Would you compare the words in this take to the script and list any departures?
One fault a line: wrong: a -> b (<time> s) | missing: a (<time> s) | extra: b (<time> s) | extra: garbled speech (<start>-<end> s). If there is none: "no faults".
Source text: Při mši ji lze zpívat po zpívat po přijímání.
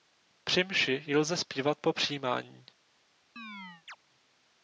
missing: zpívat po (1.9 s)